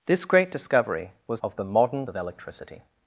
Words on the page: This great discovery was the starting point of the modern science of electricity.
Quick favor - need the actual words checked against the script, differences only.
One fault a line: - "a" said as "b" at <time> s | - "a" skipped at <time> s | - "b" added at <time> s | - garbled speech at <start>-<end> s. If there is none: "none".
- "the starting point" skipped at 1.4 s
- "science" skipped at 2.1 s